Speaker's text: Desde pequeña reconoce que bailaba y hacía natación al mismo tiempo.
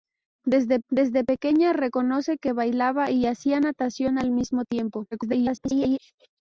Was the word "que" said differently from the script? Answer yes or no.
no